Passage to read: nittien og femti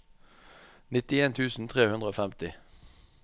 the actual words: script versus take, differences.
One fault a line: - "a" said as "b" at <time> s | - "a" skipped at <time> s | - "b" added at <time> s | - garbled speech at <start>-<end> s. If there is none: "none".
- "tusen tre hundre" added at 1.4 s